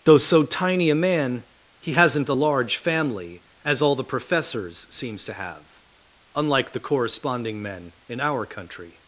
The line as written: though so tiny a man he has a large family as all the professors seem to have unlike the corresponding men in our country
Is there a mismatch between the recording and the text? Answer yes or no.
yes